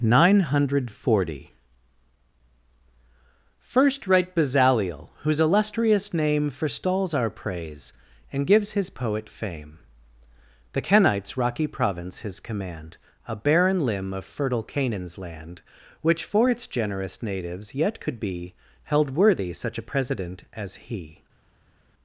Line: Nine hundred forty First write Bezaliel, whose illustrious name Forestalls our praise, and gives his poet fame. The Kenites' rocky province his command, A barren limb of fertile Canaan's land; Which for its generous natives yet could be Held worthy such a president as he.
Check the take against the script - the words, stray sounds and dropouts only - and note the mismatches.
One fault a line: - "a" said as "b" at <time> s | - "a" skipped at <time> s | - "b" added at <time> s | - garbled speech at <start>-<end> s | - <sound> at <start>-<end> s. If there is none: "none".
none